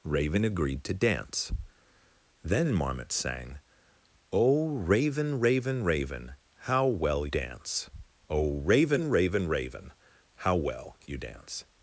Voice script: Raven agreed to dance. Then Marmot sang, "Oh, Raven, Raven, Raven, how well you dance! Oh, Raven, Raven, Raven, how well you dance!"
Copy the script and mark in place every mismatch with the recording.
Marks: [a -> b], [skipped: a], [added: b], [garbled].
Raven agreed to dance. Then Marmot sang, "Oh, Raven, Raven, Raven, how well [skipped: you] dance! Oh, Raven, Raven, Raven, how well you dance!"